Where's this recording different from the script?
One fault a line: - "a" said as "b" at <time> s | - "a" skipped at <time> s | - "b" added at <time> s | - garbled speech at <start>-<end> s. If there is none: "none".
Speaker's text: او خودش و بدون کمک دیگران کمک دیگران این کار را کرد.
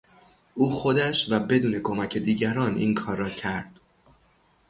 - "کمک دیگران" skipped at 2.8 s